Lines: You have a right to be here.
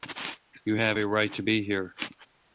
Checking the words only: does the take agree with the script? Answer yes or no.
yes